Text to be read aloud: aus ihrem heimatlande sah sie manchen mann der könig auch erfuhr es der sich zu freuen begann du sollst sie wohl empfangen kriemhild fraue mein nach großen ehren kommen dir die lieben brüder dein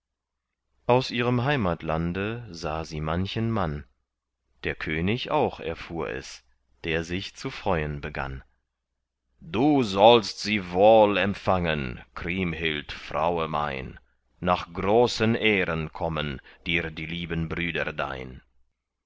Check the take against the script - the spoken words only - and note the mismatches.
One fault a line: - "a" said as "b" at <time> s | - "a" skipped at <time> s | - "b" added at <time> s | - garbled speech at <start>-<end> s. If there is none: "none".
none